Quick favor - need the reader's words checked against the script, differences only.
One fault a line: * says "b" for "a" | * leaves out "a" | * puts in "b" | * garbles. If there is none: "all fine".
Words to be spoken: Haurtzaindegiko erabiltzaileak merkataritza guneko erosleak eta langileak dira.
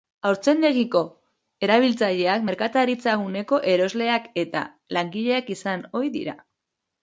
* puts in "izan ohi"